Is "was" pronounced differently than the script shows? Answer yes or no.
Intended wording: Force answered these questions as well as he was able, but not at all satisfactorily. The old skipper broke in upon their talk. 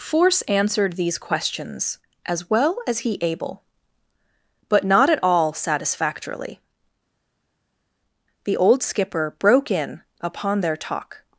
yes